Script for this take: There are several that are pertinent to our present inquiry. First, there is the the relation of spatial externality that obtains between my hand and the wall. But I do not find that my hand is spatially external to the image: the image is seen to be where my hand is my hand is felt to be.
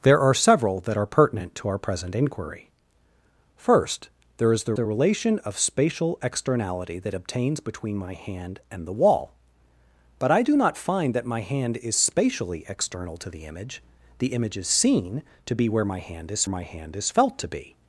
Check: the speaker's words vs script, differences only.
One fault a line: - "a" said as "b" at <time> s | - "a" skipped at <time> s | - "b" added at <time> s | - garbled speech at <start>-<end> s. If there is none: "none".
none